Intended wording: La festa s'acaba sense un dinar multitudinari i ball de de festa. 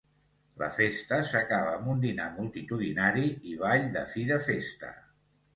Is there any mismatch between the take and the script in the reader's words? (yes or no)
yes